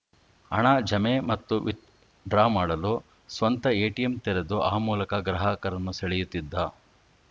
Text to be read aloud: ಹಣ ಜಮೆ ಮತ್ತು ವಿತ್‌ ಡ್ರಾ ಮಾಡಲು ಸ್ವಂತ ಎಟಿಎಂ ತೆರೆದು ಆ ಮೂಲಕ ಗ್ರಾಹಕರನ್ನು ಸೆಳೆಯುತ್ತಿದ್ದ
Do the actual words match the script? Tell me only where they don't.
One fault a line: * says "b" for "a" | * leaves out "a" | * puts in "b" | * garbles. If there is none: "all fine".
all fine